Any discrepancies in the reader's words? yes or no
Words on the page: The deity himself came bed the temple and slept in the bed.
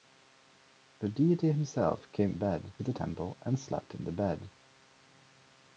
no